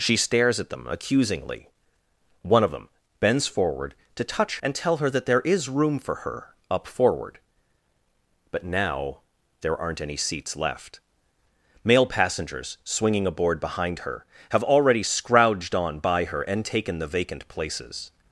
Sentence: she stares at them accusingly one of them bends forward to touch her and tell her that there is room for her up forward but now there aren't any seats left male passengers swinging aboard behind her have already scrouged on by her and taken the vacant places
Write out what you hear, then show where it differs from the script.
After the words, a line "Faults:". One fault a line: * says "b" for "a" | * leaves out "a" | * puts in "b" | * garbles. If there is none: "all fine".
she stares at them accusingly one of them bends forward to touch and tell her that there is room for her up forward but now there aren't any seats left male passengers swinging aboard behind her have already scrouged on by her and taken the vacant places
Faults:
* leaves out "her"